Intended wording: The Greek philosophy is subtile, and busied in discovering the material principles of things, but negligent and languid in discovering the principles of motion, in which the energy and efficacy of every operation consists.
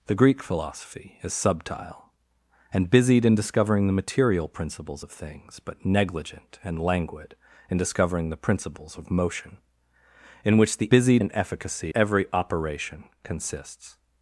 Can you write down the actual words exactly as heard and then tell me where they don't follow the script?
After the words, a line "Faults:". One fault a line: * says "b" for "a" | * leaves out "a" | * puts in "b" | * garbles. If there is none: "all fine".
The Greek philosophy is subtile, and busied in discovering the material principles of things, but negligent and languid in discovering the principles of motion, in which the busied and efficacy every operation consists.
Faults:
* says "busied" for "energy"
* leaves out "of"